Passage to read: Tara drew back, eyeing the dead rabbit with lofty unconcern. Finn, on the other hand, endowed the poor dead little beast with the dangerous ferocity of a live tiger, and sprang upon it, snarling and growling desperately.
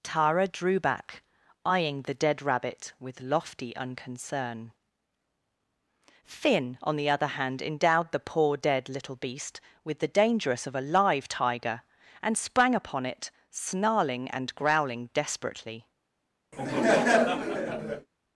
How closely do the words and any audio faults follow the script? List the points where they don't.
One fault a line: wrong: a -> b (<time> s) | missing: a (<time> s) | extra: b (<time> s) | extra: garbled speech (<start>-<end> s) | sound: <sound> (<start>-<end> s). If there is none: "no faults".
missing: ferocity (10.7 s)
sound: laugh (16.5-18.1 s)